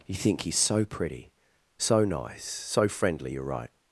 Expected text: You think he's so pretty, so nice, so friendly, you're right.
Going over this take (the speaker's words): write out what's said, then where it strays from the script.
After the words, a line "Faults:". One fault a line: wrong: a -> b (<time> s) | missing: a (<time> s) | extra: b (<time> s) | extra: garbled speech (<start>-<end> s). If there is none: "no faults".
You think he's so pretty, so nice, so friendly, you're right.
Faults:
no faults